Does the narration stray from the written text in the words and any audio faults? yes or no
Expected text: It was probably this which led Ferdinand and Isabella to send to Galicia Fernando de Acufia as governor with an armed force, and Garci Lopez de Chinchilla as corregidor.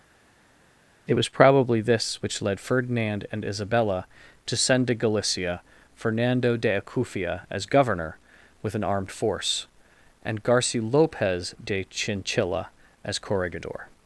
no